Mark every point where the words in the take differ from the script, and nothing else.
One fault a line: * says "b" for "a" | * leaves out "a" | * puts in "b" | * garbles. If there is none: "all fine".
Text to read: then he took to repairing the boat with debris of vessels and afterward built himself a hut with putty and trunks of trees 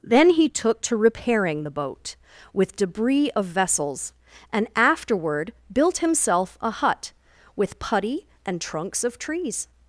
all fine